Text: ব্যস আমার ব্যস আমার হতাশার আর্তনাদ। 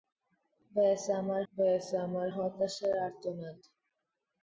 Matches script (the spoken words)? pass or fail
pass